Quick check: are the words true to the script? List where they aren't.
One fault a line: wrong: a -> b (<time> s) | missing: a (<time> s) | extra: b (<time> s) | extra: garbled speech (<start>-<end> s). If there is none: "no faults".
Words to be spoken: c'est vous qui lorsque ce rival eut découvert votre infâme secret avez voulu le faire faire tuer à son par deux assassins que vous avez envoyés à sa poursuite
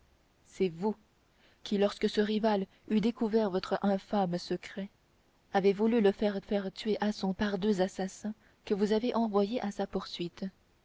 no faults